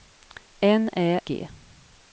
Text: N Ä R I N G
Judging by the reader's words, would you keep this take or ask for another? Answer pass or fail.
fail